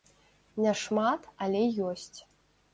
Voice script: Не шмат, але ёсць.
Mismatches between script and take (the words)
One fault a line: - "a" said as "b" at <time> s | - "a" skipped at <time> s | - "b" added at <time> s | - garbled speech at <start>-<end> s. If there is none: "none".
none